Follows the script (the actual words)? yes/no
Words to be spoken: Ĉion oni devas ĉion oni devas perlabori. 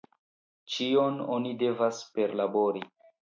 no